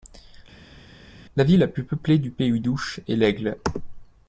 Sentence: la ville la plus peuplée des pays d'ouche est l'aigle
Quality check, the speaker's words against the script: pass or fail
fail